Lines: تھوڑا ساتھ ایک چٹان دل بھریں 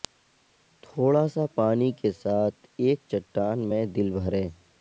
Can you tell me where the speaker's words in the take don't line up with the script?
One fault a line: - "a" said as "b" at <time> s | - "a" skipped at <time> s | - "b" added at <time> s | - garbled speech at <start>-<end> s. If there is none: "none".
- "سا پانی کے" added at 1.3 s
- "میں" added at 3.7 s